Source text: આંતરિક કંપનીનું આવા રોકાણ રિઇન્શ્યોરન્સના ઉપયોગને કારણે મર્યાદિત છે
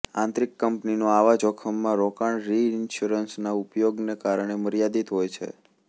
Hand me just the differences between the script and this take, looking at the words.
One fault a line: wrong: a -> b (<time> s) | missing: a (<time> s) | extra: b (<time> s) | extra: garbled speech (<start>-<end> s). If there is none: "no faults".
extra: જોખમમાં (1.4 s)
extra: હોય (5.1 s)